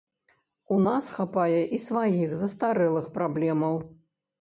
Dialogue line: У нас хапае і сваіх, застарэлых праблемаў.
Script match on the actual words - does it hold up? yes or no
yes